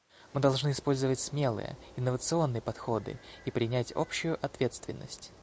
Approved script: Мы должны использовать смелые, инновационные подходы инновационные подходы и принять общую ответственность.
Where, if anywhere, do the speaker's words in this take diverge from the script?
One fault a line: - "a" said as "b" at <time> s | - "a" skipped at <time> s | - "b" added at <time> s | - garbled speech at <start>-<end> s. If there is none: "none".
- "инновационные подходы" skipped at 3.2 s